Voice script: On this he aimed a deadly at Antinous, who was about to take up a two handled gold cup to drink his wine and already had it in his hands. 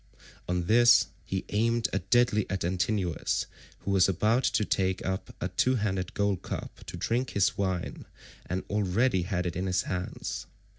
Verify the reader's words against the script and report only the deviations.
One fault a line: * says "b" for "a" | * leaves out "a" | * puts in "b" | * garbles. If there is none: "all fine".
all fine